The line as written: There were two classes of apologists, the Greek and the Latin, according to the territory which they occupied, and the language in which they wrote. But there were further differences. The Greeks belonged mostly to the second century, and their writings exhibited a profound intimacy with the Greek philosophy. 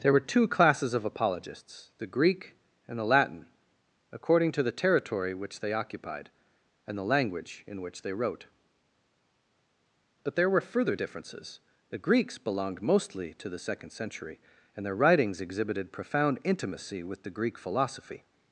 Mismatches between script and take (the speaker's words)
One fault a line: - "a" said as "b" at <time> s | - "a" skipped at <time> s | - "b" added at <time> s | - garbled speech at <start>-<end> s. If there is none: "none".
- "a" skipped at 15.9 s